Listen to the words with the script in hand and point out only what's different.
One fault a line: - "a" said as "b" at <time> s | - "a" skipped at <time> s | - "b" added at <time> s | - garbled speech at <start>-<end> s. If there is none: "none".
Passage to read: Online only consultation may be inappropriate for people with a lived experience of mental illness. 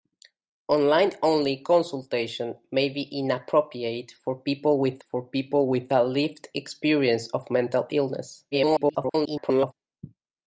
- "for people with" added at 5.0 s
- garbled speech at 8.5-9.7 s